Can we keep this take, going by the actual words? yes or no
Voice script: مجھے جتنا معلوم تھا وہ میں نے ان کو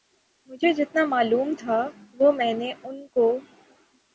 yes